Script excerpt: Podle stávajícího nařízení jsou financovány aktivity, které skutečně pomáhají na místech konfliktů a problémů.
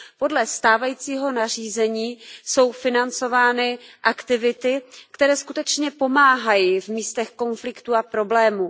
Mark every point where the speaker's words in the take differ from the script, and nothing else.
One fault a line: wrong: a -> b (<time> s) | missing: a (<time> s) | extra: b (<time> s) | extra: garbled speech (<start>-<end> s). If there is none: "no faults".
wrong: na -> v (6.8 s)